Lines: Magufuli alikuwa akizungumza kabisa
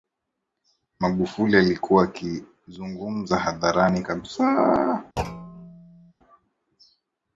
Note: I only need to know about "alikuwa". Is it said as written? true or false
true